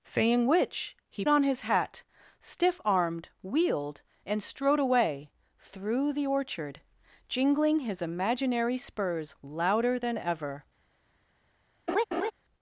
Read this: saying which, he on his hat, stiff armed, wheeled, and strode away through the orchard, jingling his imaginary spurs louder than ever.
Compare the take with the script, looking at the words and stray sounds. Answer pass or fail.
fail